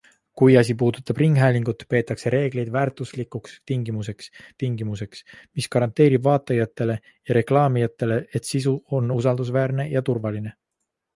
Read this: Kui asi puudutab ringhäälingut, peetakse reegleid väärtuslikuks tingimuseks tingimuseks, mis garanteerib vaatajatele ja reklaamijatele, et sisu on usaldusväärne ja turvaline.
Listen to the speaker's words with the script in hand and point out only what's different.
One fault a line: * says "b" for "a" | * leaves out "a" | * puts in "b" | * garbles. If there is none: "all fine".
all fine